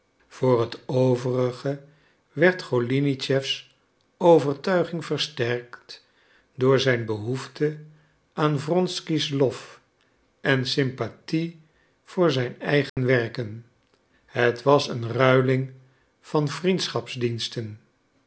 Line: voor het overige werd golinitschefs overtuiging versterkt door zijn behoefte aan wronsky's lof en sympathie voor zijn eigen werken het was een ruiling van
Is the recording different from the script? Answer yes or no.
no